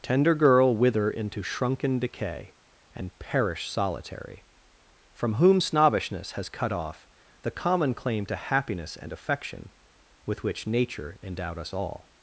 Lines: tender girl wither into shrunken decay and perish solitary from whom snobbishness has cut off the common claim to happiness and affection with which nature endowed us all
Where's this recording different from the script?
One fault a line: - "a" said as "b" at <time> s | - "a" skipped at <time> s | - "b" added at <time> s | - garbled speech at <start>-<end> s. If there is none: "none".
none